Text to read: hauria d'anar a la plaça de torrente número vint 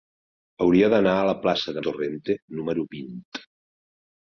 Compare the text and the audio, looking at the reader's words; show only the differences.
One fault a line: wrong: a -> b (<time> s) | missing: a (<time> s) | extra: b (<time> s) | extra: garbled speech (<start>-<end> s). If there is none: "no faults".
no faults